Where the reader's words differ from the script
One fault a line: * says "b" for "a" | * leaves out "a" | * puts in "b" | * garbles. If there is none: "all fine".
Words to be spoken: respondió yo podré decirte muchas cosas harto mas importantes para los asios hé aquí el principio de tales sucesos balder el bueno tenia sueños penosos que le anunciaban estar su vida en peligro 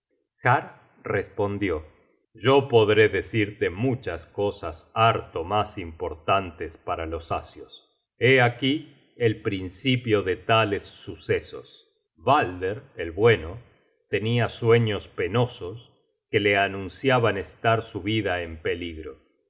all fine